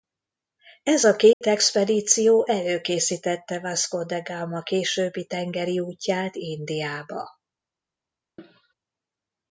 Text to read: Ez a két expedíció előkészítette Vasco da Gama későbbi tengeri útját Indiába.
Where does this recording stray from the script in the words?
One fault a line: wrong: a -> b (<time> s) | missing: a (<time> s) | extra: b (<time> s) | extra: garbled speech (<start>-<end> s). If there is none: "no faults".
no faults